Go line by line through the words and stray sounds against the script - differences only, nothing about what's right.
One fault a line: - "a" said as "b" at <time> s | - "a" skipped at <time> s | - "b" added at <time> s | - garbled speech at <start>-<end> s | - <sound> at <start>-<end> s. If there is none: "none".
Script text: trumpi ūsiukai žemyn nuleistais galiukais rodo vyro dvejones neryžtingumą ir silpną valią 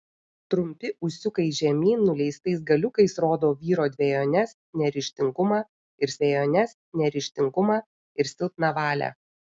- "dvejones neryžtingumą ir" added at 6.2 s